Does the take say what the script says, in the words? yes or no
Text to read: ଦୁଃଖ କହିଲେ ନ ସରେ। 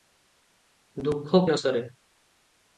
no